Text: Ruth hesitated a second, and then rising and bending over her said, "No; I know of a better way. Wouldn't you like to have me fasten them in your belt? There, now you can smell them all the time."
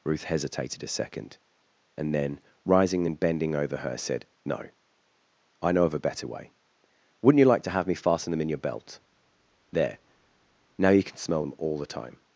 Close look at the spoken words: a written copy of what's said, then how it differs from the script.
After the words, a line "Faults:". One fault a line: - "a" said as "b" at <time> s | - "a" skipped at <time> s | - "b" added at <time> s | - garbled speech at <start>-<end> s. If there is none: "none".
Ruth hesitated a second, and then rising and bending over her said, "No; I know of a better way. Wouldn't you like to have me fasten them in your belt? There, now you can smell them all the time."
Faults:
none